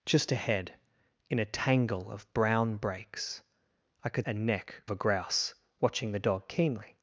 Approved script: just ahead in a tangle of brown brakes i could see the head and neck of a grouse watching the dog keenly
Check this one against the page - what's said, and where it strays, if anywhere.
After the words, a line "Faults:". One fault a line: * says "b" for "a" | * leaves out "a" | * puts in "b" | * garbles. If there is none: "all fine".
just ahead in a tangle of brown brakes i could and neck a grouse watching the dog keenly
Faults:
* leaves out "see the head"
* leaves out "of"